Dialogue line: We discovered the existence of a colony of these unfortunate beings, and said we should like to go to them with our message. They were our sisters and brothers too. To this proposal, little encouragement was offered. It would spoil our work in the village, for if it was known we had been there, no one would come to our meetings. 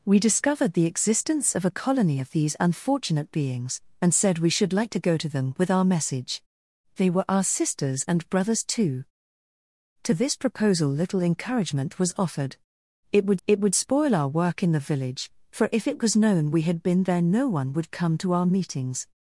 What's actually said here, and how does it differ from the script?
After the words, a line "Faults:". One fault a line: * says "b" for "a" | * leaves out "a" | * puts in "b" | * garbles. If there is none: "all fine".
We discovered the existence of a colony of these unfortunate beings, and said we should like to go to them with our message. They were our sisters and brothers too. To this proposal, little encouragement was offered. It would it would spoil our work in the village, for if it was known we had been there, no one would come to our meetings.
Faults:
* puts in "it would"